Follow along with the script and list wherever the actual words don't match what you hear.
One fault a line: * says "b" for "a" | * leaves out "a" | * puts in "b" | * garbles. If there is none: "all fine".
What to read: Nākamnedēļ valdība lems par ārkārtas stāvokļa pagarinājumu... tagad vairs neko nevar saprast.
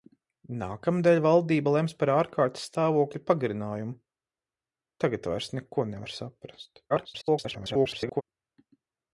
* garbles